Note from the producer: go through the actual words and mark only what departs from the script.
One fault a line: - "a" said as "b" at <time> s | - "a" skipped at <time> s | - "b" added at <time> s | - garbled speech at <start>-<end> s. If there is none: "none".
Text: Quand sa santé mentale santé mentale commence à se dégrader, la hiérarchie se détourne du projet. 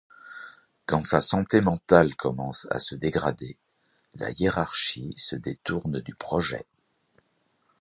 - "santé mentale" skipped at 2.1 s